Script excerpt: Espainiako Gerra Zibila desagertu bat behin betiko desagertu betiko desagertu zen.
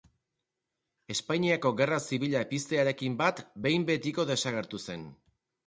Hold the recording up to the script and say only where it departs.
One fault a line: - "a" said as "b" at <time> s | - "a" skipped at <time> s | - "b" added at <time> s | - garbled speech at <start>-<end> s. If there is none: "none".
- "desagertu" said as "piztearekin" at 2.5 s
- "betiko desagertu" skipped at 4.8 s